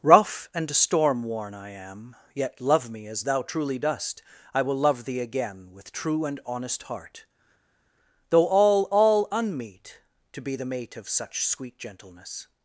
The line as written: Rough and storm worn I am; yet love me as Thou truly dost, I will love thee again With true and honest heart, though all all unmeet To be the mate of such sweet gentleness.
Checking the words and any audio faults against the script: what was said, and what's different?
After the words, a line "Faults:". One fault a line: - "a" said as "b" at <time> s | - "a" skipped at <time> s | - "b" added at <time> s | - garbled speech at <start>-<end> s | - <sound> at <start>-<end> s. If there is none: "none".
Rough and storm worn I am; yet love me as Thou truly dost, I will love thee again With true and honest heart, though all all unmeet To be the mate of such sweet gentleness.
Faults:
none